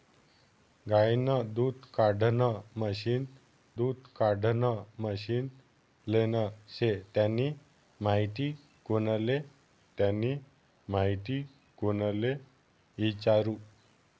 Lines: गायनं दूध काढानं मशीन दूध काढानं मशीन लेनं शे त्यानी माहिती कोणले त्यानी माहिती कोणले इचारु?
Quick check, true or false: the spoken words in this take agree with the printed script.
true